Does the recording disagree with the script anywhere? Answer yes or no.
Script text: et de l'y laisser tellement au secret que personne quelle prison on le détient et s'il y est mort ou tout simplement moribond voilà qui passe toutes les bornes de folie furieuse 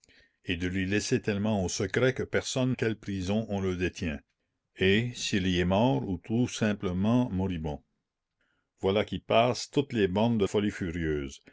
no